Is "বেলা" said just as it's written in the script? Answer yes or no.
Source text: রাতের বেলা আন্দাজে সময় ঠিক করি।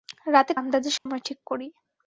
no